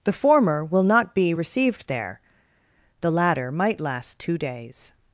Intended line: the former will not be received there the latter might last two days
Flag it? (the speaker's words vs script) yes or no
no